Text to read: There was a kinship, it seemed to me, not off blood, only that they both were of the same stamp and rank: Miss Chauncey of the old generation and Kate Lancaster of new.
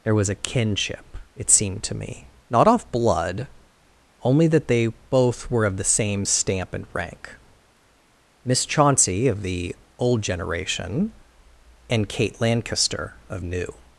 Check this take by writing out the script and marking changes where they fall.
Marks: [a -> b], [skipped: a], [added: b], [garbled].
There was a kinship, it seemed to me, not off blood, only that they both were of the same stamp and rank: Miss Chauncey of the old generation and Kate Lancaster of new.